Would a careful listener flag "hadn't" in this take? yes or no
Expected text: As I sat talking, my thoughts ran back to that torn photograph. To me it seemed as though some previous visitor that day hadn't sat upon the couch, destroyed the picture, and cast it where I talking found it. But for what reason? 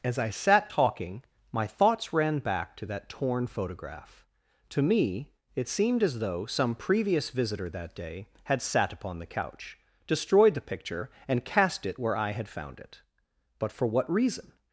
yes